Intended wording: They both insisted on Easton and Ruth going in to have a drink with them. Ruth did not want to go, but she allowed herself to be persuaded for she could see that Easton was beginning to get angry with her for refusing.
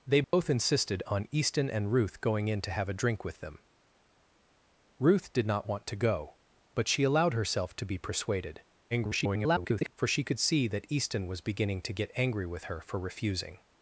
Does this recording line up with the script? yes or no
no